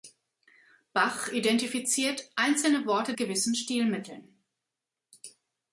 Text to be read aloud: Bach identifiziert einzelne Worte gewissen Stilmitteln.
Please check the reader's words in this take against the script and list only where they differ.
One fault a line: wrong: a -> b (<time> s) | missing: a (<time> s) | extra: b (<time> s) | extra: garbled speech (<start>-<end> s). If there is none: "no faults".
no faults